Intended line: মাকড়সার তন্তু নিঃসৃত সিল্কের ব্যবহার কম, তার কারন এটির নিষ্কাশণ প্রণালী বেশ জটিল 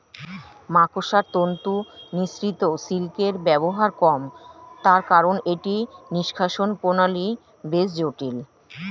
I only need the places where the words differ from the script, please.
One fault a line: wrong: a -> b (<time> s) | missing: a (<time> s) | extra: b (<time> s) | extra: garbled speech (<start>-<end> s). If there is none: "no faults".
no faults